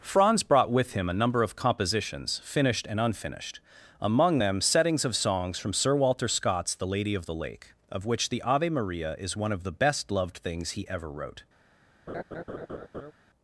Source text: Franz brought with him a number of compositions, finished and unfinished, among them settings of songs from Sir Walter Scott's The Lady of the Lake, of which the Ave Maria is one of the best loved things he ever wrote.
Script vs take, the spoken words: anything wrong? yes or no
no